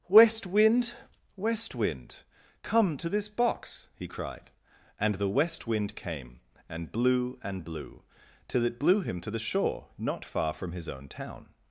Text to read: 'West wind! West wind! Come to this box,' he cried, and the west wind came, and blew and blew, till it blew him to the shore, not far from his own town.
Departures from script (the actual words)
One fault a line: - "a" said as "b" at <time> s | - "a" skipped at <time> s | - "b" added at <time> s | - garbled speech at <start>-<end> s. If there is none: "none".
none